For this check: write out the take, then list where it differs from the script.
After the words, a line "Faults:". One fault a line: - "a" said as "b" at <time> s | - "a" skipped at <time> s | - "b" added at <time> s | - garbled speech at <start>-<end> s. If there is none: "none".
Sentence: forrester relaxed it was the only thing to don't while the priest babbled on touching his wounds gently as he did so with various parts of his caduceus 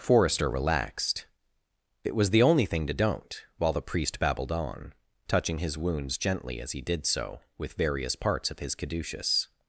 forrester relaxed it was the only thing to don't while the priest babbled on touching his wounds gently as he did so with various parts of his caduceus
Faults:
none